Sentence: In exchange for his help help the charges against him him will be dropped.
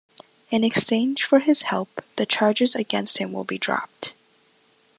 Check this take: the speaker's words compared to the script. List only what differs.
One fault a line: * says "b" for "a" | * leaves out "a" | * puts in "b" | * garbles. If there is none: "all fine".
* leaves out "help"
* leaves out "him"